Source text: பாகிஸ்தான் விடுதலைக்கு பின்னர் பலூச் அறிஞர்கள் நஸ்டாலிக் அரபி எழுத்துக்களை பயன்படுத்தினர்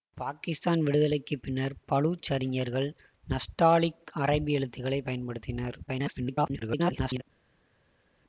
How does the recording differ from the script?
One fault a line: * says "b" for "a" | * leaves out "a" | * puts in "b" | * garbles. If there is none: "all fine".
* garbles